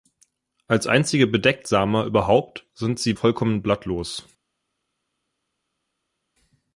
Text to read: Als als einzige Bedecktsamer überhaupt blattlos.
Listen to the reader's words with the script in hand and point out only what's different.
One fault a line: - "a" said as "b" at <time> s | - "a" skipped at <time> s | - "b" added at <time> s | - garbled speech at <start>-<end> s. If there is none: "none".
- "als" skipped at 0.9 s
- "sind sie vollkommen" added at 2.7 s